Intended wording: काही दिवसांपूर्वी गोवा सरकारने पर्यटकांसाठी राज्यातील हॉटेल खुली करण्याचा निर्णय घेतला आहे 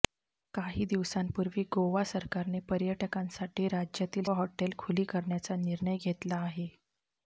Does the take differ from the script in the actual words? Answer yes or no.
no